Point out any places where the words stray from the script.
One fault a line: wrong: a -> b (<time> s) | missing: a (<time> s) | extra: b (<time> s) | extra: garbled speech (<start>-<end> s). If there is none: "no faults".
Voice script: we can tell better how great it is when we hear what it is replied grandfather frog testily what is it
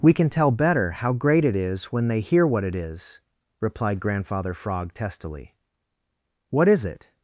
wrong: we -> they (2.1 s)